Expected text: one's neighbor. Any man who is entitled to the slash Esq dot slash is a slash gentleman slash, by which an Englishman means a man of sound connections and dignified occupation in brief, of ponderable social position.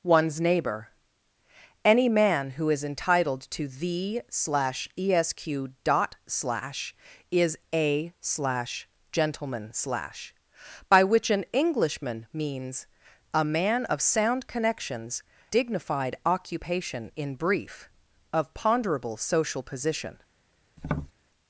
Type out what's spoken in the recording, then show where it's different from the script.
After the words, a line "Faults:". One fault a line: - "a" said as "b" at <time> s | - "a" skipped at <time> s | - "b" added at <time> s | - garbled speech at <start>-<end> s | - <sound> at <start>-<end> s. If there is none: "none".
one's neighbor. Any man who is entitled to the slash Esq dot slash is a slash gentleman slash, by which an Englishman means a man of sound connections dignified occupation in brief, of ponderable social position.
Faults:
- "and" skipped at 15.2 s
- tap at 20.8-21.1 s